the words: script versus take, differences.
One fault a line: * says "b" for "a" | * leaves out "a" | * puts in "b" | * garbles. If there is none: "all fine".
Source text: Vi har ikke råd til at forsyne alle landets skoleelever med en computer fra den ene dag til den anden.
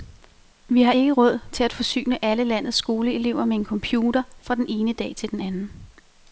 all fine